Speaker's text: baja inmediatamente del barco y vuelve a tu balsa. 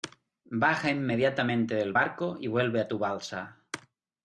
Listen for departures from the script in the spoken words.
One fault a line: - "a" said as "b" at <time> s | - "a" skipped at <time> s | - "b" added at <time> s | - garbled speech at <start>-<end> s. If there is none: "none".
none